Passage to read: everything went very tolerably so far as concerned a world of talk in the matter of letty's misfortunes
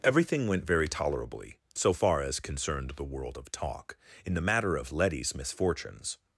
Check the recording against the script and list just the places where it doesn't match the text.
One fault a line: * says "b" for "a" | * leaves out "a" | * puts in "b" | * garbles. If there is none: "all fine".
* says "the" for "a"